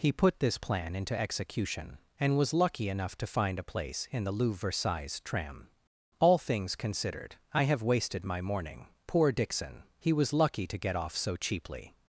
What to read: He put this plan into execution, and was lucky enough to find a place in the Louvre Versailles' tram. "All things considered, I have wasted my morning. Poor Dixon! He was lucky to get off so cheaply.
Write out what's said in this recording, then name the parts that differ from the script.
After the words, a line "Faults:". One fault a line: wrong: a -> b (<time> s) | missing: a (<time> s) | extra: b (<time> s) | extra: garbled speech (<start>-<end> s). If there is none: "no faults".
He put this plan into execution, and was lucky enough to find a place in the Louvre Versailles' tram. "All things considered, I have wasted my morning. Poor Dixon! He was lucky to get off so cheaply.
Faults:
no faults